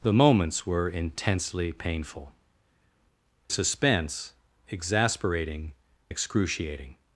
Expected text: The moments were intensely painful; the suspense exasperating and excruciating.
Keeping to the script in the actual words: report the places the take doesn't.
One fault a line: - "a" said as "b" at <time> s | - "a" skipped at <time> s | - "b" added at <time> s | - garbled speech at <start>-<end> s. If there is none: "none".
- "the" skipped at 2.3 s
- "and" skipped at 5.7 s